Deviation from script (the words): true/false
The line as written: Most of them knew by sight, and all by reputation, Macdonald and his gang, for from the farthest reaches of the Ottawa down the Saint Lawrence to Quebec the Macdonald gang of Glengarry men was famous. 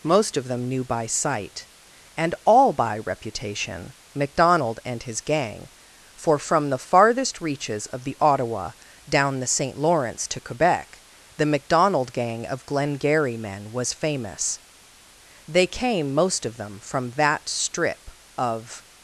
true